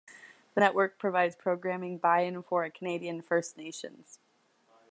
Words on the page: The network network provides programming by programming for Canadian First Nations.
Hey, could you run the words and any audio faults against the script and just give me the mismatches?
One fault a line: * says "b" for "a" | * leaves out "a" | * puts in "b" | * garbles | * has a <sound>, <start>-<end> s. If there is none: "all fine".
* leaves out "network"
* says "and" for "programming"